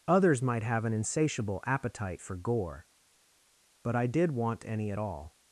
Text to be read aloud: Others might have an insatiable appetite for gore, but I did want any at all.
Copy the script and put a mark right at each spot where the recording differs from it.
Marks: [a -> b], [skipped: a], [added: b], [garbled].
Others might have an insatiable appetite for gore, but I did want any at all.